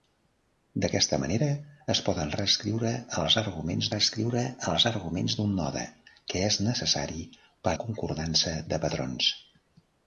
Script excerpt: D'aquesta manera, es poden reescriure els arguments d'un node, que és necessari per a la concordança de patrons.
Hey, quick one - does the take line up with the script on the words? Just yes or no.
no